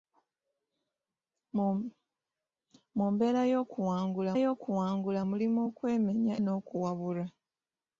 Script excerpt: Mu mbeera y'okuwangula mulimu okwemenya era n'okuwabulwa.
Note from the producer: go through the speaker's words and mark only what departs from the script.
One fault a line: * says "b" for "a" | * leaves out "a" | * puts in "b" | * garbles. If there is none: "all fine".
* puts in "y'okuwangula"
* leaves out "era"